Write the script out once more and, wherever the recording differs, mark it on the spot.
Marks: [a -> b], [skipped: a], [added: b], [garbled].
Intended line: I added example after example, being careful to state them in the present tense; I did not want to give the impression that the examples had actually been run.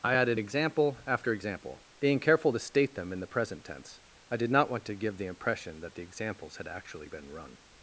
I added example after example, being careful to state them in the present tense; I did not want to give the impression that the examples had actually been run.